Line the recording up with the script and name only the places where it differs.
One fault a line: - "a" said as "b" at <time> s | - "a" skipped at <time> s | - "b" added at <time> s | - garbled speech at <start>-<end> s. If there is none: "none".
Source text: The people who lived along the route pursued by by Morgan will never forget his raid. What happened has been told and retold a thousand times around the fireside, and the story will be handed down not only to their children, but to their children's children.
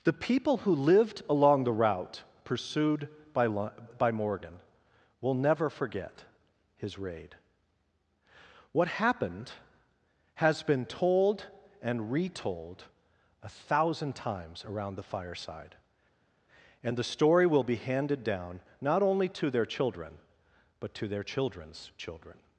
none